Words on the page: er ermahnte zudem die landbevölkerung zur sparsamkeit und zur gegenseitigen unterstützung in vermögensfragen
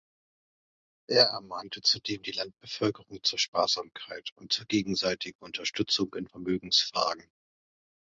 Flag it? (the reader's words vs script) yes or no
no